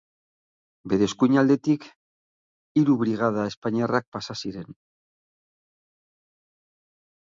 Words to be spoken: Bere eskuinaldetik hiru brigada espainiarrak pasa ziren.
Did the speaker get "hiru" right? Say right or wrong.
right